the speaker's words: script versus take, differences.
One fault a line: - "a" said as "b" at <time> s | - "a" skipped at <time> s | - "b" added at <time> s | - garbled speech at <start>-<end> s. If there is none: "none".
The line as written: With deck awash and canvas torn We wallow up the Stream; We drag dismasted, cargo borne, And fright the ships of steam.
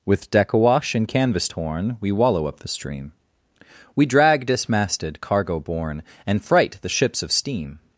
none